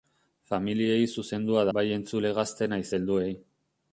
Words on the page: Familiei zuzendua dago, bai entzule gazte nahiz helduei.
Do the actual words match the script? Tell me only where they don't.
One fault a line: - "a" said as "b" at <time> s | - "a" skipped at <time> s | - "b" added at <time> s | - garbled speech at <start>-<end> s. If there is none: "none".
- "dago" skipped at 1.7 s